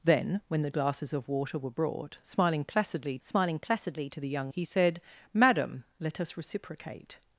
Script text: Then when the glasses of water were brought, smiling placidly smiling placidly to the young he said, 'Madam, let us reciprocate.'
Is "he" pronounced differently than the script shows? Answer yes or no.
no